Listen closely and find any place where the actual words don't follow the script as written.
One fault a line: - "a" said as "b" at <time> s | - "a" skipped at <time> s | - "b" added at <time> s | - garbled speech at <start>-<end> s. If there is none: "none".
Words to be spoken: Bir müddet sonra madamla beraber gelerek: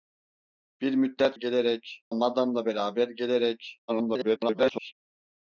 - "sonra" said as "gelerek" at 1.3 s
- garbled speech at 3.9-4.9 s